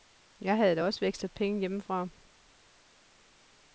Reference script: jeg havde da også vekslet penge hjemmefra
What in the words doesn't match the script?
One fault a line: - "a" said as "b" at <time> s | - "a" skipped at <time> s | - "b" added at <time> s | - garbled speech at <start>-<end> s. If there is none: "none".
none